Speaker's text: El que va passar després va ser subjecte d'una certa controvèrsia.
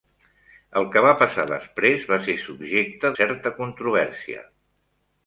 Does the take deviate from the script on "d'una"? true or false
true